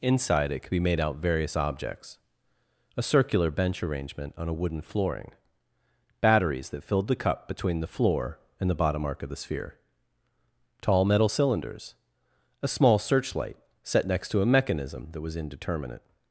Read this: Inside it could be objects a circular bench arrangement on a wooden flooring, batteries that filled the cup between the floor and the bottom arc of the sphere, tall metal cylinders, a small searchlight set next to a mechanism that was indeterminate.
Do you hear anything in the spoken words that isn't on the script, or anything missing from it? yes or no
yes